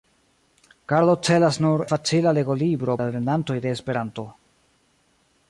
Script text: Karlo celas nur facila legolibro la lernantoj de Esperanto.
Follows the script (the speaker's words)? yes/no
yes